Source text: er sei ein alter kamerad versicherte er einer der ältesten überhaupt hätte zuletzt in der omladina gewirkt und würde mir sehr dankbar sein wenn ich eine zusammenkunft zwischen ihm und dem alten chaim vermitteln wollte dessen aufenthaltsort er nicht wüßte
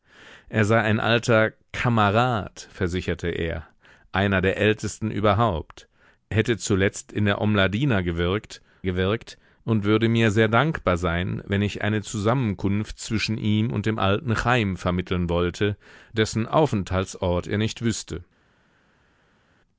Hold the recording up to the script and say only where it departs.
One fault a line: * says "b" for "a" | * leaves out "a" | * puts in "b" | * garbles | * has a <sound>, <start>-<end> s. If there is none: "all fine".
* puts in "gewirkt"